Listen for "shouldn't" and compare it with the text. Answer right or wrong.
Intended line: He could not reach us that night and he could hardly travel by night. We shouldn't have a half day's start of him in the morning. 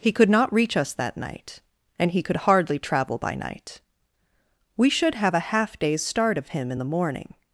wrong